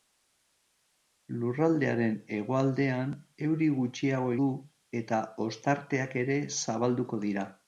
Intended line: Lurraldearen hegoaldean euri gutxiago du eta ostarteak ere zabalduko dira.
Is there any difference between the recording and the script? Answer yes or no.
no